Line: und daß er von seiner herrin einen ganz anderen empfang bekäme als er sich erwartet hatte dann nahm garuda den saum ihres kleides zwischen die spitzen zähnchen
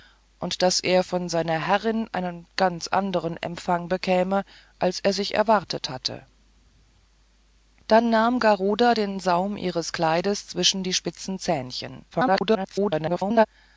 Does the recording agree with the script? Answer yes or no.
no